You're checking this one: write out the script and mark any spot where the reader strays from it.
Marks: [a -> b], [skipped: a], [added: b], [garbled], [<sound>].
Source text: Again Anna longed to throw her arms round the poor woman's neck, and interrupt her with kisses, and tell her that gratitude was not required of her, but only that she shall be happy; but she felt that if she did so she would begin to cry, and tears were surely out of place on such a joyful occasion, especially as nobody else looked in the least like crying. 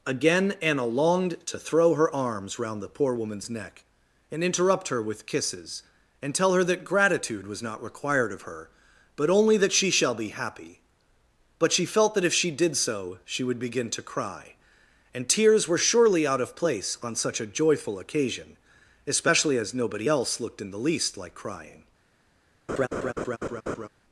Again Anna longed to throw her arms round the poor woman's neck, and interrupt her with kisses, and tell her that gratitude was not required of her, but only that she shall be happy; but she felt that if she did so she would begin to cry, and tears were surely out of place on such a joyful occasion, especially as nobody else looked in the least like crying. [laugh]